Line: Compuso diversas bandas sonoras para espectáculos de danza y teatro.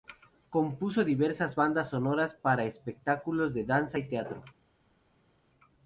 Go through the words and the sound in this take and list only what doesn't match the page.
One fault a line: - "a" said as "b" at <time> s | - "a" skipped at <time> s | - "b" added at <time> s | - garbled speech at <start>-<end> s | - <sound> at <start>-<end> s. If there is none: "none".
none